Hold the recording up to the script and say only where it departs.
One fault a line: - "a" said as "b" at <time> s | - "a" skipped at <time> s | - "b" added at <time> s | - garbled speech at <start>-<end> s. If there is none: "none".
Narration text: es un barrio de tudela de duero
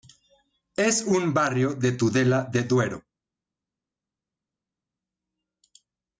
none